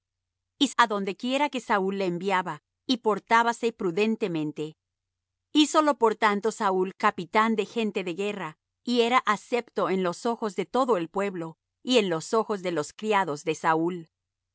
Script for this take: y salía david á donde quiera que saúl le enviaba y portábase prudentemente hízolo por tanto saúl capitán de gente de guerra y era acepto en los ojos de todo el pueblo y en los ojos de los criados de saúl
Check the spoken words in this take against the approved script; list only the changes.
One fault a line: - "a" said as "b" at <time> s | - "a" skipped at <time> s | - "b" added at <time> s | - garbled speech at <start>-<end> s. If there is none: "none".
- "salía david" skipped at 0.7 s